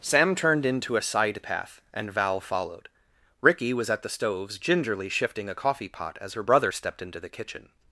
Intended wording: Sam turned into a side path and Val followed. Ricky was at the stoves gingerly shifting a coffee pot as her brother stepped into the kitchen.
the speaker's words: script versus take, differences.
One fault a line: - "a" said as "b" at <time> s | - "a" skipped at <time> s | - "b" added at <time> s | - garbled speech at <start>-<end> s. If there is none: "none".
none